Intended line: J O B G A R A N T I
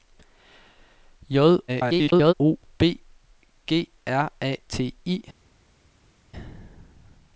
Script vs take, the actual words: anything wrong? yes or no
yes